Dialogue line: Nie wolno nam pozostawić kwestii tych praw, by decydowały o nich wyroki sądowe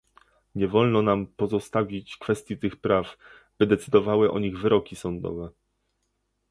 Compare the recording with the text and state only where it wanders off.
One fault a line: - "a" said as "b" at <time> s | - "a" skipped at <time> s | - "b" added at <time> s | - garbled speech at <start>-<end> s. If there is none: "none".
none